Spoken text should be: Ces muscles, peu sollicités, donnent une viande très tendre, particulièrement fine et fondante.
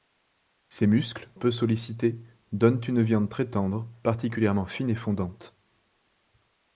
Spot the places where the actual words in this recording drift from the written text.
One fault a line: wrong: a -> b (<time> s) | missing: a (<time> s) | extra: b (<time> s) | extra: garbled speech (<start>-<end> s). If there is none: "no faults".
no faults